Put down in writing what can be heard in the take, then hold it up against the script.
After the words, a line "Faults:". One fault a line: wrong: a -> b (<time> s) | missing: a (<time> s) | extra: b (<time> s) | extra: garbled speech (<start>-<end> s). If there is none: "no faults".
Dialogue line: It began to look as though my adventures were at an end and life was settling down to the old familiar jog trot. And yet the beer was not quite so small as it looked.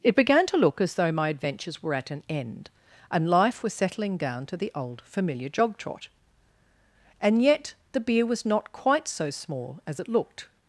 It began to look as though my adventures were at an end and life was settling down to the old familiar jog trot. And yet the beer was not quite so small as it looked.
Faults:
no faults